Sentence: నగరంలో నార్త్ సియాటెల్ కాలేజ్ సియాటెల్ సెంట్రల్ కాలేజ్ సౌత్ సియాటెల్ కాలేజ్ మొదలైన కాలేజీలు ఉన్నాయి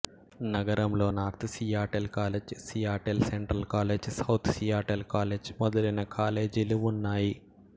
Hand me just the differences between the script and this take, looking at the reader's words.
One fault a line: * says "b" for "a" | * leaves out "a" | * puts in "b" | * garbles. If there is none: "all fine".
all fine